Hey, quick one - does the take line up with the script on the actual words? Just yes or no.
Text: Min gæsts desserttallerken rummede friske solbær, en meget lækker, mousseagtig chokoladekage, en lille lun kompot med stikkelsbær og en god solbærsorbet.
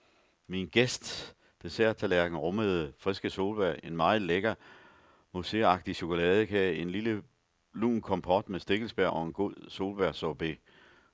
yes